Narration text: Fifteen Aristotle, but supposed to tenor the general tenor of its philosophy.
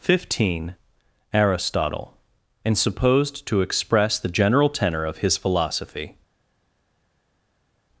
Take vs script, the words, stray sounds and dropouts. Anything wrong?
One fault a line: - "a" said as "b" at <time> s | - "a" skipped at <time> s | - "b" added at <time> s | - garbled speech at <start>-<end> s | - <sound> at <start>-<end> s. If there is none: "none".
- "but" said as "and" at 2.6 s
- "tenor" said as "express" at 3.6 s
- "its" said as "his" at 5.2 s